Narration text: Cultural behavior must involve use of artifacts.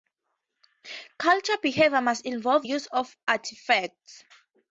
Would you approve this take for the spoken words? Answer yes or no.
yes